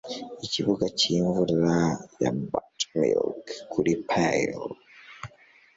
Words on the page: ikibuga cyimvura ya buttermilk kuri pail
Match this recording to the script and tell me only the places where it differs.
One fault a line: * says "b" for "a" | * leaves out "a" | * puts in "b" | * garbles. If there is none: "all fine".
all fine